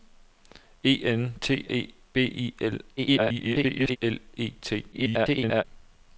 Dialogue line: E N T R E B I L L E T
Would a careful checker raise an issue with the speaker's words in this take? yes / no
yes